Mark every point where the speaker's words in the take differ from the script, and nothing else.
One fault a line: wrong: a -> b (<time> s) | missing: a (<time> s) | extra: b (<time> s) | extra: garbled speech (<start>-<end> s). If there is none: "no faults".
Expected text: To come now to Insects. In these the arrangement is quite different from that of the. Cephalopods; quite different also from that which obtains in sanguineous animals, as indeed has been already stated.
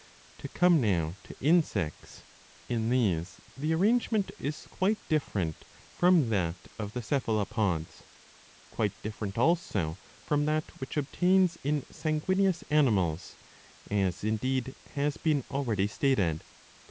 no faults